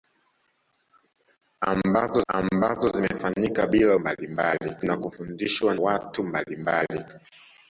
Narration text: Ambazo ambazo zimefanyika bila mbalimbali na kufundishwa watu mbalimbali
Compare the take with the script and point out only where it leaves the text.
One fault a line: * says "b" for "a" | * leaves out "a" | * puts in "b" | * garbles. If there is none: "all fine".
all fine